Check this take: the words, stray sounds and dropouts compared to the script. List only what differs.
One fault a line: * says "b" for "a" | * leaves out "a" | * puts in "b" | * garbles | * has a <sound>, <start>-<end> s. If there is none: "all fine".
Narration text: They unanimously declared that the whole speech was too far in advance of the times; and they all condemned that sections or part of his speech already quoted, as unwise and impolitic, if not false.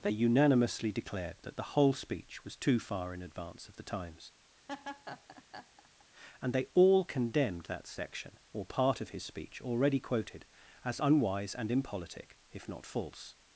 * has a laugh, 4.7-6.0 s
* says "section" for "sections"